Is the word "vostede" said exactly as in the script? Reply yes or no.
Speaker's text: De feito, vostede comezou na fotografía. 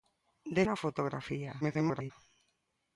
no